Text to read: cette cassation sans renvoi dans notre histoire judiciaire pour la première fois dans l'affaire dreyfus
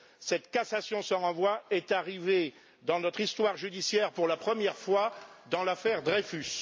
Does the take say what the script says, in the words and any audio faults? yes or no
no